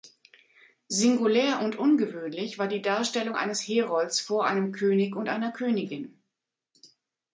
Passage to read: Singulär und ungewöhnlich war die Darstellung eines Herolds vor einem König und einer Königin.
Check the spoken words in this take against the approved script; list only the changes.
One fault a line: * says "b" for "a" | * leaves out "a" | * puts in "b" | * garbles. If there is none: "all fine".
all fine